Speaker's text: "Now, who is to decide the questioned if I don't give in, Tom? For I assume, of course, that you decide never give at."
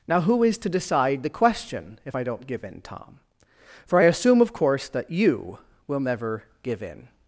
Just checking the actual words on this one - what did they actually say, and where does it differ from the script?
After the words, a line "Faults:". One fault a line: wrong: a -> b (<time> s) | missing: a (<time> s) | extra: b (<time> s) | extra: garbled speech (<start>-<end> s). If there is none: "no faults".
"Now, who is to decide the question if I don't give in, Tom? For I assume, of course, that you will never give in."
Faults:
wrong: questioned -> question (1.3 s)
wrong: decide -> will (5.9 s)
wrong: at -> in (6.8 s)